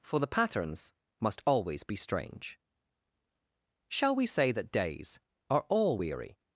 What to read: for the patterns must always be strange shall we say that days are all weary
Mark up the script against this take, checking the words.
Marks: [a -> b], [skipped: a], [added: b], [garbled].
for the patterns must always be strange shall we say that days are all weary